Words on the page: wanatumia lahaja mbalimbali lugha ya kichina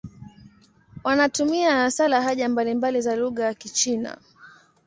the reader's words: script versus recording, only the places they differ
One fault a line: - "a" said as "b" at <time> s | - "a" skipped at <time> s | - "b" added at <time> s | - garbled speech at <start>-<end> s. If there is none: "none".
- "hasa" added at 1.8 s
- "za" added at 3.0 s